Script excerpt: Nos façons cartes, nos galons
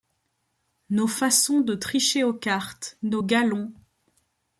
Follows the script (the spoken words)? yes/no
no